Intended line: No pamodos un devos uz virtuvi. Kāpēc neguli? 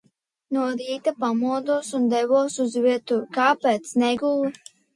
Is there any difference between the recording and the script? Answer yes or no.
yes